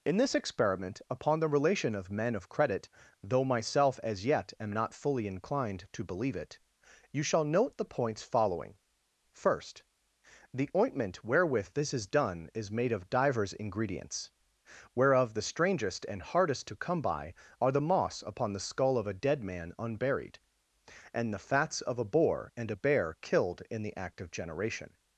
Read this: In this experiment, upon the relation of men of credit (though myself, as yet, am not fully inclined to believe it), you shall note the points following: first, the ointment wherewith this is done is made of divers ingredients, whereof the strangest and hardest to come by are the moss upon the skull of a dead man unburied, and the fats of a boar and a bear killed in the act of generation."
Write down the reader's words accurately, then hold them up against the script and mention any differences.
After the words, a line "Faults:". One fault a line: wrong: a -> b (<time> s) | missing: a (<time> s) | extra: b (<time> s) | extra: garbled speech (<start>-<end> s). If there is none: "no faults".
In this experiment, upon the relation of men of credit (though myself, as yet, am not fully inclined to believe it), you shall note the points following: first, the ointment wherewith this is done is made of divers ingredients, whereof the strangest and hardest to come by are the moss upon the skull of a dead man unburied, and the fats of a boar and a bear killed in the act of generation."
Faults:
no faults